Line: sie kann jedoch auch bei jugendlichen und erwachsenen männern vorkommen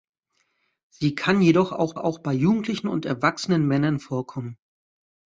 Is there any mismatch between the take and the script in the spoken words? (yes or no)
yes